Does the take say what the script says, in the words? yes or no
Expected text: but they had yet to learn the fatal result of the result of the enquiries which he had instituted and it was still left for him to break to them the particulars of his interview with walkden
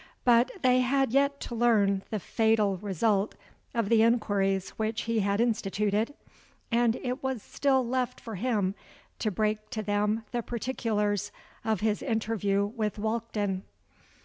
no